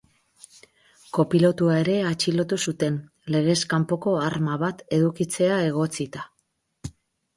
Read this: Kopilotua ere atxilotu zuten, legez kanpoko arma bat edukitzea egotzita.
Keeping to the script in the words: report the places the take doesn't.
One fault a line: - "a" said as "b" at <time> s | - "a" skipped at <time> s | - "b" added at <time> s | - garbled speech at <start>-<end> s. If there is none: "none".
none